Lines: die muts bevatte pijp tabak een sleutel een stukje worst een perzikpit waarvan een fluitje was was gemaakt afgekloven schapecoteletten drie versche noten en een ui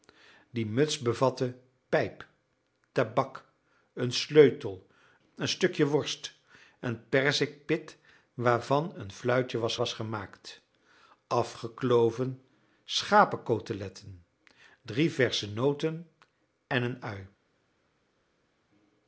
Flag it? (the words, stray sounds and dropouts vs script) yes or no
no